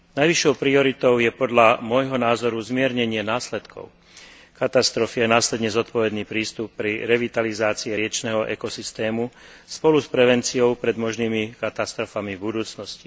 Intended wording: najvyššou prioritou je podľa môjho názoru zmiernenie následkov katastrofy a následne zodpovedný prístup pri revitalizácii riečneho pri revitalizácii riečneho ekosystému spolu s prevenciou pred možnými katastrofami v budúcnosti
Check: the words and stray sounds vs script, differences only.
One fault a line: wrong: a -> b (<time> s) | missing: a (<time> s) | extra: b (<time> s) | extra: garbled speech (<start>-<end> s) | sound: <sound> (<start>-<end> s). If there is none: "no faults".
missing: pri revitalizácii riečneho (8.5 s)